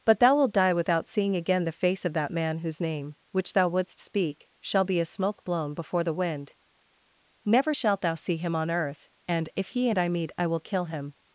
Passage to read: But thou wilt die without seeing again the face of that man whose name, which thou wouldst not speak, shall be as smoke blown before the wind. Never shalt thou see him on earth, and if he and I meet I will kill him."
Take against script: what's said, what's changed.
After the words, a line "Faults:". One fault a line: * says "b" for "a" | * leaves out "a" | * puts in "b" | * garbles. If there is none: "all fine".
But thou wilt die without seeing again the face of that man whose name, which thou wouldst speak, shall be as smoke blown before the wind. Never shalt thou see him on earth, and if he and I meet I will kill him."
Faults:
* leaves out "not"